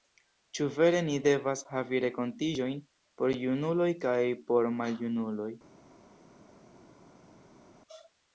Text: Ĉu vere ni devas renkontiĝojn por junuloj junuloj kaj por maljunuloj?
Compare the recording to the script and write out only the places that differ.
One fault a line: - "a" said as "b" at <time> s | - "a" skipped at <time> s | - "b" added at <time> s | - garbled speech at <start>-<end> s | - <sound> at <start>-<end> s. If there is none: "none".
- "havi" added at 1.7 s
- "junuloj" skipped at 3.9 s